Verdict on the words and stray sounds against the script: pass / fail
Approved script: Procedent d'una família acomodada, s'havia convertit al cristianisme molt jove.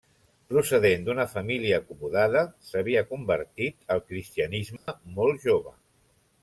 fail